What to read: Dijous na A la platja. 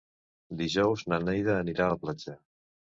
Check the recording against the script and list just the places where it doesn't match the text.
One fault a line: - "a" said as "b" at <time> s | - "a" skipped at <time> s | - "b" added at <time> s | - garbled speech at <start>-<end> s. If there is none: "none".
- "Neida anirà" added at 1.3 s